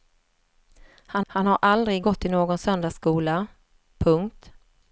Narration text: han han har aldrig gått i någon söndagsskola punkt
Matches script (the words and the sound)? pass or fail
pass